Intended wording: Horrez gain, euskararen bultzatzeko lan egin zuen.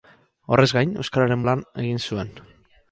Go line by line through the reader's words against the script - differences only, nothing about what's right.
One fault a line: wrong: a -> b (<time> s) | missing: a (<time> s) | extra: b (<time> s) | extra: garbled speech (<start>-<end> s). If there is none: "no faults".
missing: bultzatzeko (1.4 s)